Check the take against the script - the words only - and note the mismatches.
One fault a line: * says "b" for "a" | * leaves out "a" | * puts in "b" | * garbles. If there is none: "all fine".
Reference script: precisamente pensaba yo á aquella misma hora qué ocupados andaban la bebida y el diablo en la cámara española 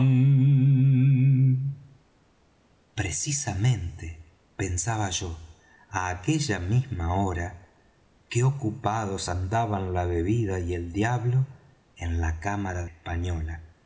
all fine